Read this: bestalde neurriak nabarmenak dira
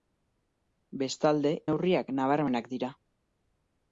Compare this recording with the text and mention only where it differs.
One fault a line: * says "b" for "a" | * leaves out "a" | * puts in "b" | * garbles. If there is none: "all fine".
all fine